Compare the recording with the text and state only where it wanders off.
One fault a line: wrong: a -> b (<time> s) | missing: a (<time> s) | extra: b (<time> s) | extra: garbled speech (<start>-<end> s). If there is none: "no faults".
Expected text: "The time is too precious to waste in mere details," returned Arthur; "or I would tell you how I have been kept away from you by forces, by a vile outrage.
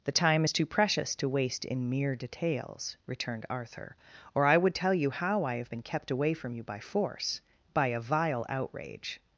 wrong: forces -> force (6.8 s)